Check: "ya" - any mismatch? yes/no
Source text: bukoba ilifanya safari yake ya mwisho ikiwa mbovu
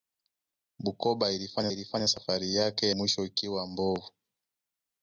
yes